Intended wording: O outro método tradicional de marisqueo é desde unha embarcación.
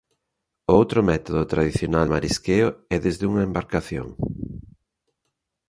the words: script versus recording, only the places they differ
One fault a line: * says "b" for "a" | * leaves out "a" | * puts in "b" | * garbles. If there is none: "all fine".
* leaves out "de"